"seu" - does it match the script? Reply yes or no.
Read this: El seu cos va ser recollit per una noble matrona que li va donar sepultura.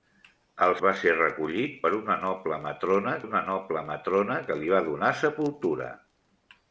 no